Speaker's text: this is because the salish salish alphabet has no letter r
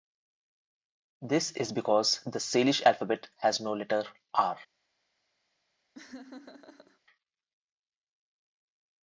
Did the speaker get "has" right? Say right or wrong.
right